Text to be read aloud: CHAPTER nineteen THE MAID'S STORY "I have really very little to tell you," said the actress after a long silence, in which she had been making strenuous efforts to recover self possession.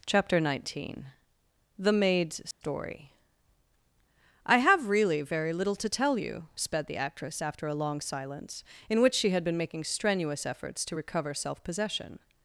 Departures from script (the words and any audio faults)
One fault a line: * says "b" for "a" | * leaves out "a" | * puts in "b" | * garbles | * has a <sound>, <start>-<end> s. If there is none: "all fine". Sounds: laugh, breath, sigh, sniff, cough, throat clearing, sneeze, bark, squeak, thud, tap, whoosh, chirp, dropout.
* has a dropout, 2.5-2.6 s
* says "sped" for "said"